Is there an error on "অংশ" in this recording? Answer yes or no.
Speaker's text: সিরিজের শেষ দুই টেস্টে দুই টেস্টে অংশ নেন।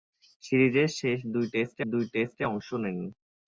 no